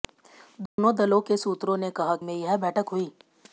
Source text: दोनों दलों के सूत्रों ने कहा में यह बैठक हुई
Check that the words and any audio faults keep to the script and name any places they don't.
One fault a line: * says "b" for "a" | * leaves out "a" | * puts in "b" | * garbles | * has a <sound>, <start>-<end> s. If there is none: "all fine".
* has a dropout, 0.7-0.8 s